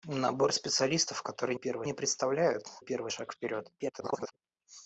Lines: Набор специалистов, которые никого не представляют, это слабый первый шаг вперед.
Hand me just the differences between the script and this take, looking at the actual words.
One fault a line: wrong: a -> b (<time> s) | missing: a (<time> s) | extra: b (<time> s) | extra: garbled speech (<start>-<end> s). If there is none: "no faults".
wrong: никого -> первый (1.6 s)
missing: это слабый (2.7 s)
extra: garbled speech (3.8-4.4 s)